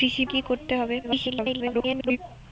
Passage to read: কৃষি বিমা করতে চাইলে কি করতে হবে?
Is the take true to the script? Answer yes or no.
no